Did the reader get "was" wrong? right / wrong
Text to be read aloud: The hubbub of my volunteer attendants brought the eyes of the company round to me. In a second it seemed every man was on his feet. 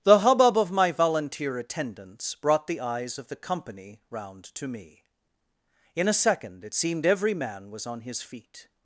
right